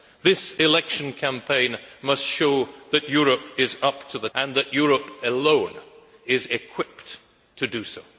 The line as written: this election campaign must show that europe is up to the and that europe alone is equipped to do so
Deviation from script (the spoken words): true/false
false